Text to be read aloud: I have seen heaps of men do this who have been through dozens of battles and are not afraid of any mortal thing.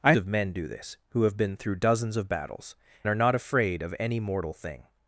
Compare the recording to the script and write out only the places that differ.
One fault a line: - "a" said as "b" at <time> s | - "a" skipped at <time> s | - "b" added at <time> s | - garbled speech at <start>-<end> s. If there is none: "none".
- "have seen heaps" skipped at 0.1 s
- "and" skipped at 2.8 s